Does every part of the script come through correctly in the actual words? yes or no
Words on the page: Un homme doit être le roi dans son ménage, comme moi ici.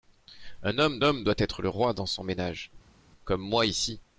no